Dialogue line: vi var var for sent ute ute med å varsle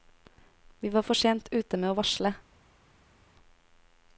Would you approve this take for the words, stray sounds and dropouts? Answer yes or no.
no